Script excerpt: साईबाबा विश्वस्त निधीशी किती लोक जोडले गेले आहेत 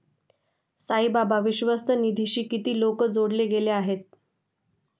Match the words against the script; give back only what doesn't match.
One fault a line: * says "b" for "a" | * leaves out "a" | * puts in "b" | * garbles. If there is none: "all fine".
all fine